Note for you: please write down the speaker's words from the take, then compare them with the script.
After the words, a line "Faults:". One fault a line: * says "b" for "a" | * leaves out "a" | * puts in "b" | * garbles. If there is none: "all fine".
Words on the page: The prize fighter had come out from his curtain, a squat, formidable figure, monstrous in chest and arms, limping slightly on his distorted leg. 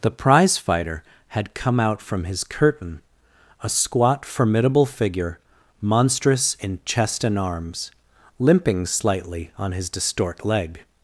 The prize fighter had come out from his curtain, a squat, formidable figure, monstrous in chest and arms, limping slightly on his distort leg.
Faults:
* says "distort" for "distorted"